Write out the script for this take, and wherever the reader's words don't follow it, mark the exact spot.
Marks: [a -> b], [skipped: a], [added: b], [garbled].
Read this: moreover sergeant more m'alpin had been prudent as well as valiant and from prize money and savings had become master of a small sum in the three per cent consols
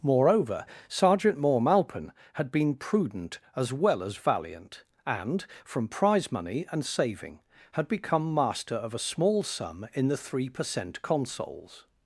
moreover sergeant more m'alpin had been prudent as well as valiant and from prize money and [savings -> saving] had become master of a small sum in the three per cent consols